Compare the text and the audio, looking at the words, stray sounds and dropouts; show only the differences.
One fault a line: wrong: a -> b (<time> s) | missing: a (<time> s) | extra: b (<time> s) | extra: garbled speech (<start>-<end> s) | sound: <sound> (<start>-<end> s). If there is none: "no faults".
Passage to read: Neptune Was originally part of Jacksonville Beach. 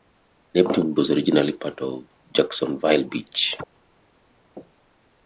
no faults